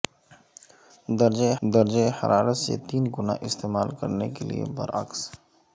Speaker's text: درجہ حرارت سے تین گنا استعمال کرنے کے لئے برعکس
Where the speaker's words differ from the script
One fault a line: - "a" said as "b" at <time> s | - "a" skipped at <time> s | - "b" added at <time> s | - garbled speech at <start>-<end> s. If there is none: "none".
- "درجہ" added at 1.6 s